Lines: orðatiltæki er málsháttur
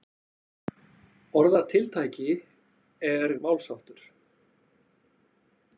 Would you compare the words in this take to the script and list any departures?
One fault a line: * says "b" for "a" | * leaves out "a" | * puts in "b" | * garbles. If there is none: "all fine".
all fine